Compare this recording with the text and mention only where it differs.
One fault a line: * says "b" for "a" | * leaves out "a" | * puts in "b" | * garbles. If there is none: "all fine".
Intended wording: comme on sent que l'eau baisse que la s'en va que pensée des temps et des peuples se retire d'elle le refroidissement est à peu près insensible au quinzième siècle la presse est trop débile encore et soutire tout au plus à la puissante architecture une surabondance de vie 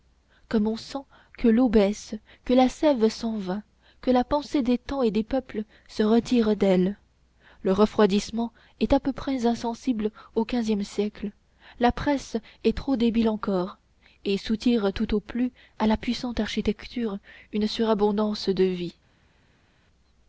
* puts in "sève"
* puts in "la"